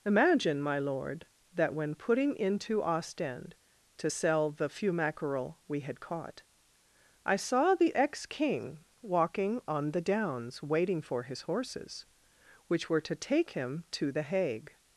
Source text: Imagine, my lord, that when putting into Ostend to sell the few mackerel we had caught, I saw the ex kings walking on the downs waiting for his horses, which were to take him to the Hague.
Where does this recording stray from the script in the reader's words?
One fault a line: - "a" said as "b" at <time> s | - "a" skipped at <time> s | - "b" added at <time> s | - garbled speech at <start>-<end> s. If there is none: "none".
- "kings" said as "king" at 8.3 s